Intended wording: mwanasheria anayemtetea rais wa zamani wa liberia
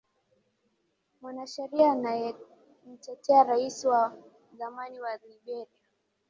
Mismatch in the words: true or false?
false